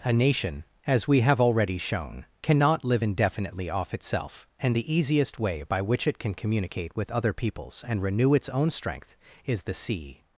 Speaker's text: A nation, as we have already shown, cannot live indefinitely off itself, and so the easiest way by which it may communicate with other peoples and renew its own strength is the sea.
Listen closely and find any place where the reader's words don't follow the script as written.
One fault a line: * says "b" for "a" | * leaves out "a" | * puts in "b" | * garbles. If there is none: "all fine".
* leaves out "so"
* says "can" for "may"